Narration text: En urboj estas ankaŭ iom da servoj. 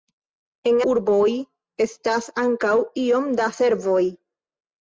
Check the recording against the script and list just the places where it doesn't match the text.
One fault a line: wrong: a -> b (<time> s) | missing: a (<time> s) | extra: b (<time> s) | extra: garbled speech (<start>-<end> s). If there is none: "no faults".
no faults